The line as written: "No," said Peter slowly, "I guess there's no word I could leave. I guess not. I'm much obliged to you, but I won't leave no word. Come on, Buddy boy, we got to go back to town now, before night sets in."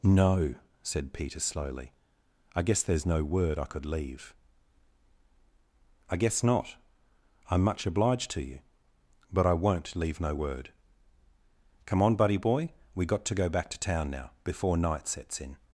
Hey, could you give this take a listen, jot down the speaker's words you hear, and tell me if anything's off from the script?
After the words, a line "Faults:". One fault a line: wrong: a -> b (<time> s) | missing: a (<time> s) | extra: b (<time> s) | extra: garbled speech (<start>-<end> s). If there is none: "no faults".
"No," said Peter slowly, "I guess there's no word I could leave. I guess not. I'm much obliged to you, but I won't leave no word. Come on, Buddy boy, we got to go back to town now, before night sets in."
Faults:
no faults